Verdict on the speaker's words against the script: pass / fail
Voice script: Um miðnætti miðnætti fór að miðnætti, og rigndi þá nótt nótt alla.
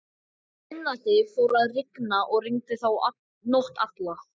fail